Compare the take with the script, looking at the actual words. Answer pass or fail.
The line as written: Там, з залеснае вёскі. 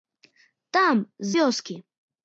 fail